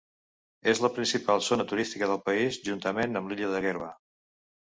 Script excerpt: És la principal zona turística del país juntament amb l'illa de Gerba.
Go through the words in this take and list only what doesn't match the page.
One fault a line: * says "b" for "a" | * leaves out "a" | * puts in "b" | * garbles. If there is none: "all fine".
all fine